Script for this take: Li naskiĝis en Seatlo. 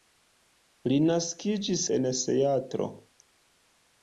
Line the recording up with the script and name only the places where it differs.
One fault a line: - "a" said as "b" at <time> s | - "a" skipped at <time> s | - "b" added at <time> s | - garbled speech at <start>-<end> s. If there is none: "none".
none